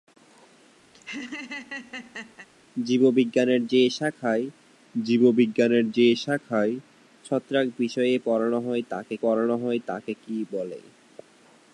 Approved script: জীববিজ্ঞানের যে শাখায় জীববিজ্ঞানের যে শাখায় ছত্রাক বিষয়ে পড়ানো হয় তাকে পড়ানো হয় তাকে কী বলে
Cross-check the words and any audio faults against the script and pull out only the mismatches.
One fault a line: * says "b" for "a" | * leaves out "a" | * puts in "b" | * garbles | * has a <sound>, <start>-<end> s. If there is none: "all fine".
* has a laugh, 0.9-2.5 s